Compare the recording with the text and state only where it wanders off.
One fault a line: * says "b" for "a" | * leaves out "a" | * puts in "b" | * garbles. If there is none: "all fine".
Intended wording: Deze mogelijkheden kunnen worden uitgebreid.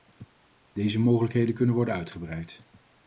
all fine